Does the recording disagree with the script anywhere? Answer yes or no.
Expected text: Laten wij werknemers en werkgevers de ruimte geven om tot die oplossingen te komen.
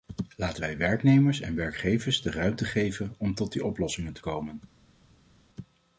no